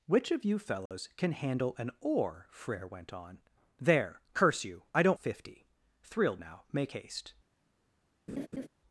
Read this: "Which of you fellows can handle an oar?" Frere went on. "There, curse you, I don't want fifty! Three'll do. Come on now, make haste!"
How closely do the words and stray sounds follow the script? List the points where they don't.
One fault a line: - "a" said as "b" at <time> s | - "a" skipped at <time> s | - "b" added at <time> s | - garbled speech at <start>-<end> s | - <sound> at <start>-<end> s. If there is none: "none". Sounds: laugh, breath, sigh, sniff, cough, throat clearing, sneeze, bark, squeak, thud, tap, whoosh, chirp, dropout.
- dropout at 0.9-0.9 s
- "want" skipped at 5.2 s
- "do Come on" skipped at 6.4 s
- laugh at 8.3-8.7 s